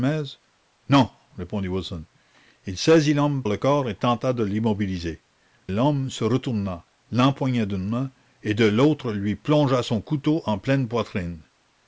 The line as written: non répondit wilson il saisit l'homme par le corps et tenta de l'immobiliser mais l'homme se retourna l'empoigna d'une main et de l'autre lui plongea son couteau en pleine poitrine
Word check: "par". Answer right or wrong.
wrong